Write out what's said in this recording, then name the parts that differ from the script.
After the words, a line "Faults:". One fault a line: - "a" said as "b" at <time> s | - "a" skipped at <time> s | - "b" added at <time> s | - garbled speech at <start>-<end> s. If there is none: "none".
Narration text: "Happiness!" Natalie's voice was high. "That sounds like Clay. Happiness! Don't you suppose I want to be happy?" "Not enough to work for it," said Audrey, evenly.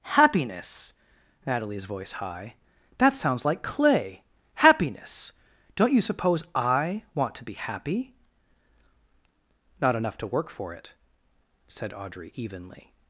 "Happiness!" Natalie's voice high. "That sounds like Clay. Happiness! Don't you suppose I want to be happy?" "Not enough to work for it," said Audrey, evenly.
Faults:
- "was" skipped at 2.1 s